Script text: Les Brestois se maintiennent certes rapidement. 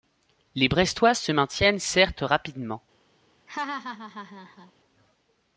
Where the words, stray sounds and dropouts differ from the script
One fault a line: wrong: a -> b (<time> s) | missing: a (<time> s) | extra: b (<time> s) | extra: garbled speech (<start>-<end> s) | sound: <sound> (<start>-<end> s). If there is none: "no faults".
sound: laugh (3.5-4.7 s)